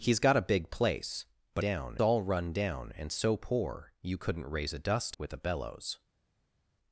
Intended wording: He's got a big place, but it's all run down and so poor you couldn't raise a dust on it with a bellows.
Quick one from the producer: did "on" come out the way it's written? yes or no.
no